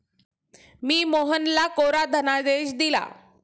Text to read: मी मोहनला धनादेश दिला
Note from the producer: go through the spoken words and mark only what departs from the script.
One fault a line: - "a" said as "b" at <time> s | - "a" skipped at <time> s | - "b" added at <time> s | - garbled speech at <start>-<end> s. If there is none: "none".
- "कोरा" added at 1.7 s